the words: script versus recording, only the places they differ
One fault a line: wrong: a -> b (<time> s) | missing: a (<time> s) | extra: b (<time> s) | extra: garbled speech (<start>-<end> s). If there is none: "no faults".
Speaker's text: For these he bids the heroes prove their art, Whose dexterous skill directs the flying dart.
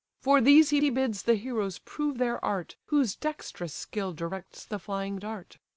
extra: he (0.8 s)